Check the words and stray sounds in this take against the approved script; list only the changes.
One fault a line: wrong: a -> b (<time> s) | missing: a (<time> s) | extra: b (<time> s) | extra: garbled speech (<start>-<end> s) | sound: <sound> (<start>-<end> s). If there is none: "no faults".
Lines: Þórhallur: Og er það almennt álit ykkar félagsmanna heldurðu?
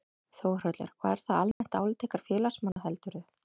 sound: dropout (1.5-1.6 s)
sound: dropout (2.7-2.8 s)